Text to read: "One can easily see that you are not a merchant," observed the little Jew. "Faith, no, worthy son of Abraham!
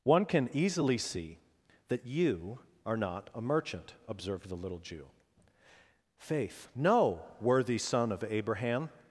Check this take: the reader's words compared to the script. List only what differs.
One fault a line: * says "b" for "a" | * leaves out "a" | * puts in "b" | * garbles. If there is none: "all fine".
all fine